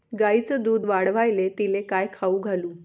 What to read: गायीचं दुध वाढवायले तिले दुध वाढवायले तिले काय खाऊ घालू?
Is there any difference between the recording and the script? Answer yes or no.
yes